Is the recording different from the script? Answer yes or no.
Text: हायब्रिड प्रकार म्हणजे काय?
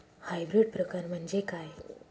no